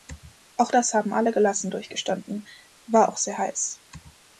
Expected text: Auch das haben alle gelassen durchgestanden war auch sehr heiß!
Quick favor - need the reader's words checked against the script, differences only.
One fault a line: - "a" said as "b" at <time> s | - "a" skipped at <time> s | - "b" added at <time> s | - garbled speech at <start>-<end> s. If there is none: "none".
none